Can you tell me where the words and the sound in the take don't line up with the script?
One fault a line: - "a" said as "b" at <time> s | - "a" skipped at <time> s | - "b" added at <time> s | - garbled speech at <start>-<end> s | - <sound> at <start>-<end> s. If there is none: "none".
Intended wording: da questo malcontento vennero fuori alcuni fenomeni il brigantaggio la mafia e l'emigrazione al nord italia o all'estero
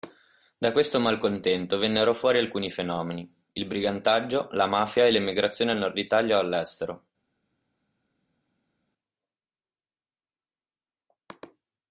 none